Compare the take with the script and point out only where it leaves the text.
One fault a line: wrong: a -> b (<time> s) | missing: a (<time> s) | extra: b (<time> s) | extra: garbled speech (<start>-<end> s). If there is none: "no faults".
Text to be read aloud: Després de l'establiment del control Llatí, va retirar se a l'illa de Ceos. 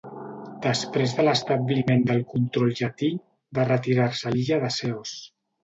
no faults